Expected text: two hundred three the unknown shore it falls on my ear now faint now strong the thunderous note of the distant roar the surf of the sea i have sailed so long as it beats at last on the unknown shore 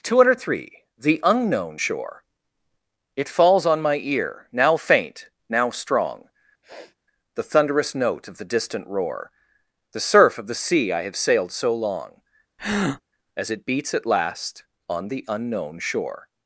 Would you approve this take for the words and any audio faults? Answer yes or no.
no